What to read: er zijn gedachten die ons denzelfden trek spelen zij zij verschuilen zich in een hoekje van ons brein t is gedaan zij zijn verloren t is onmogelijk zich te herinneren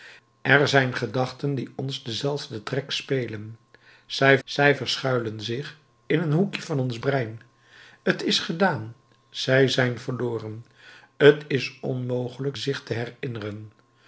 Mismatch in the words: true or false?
false